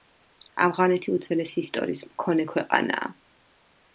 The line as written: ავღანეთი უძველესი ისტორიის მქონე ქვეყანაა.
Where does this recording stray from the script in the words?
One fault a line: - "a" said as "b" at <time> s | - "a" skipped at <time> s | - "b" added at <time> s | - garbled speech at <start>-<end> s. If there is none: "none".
none